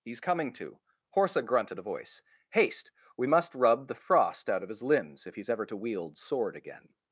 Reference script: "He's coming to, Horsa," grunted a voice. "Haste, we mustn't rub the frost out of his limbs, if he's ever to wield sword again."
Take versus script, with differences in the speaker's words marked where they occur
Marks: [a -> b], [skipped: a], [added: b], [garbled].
"He's coming to, Horsa," grunted a voice. "Haste, we [mustn't -> must] rub the frost out of his limbs, if he's ever to wield sword again."